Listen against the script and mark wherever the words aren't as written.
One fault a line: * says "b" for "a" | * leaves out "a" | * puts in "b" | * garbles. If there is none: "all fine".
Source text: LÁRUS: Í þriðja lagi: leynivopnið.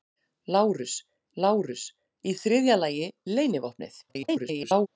* puts in "lárus"
* garbles